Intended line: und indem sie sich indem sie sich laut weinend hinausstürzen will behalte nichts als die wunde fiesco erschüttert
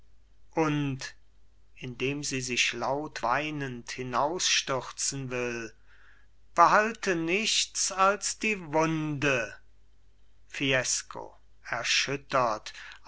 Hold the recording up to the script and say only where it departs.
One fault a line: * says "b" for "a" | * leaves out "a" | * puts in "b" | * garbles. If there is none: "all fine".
* leaves out "indem sie sich"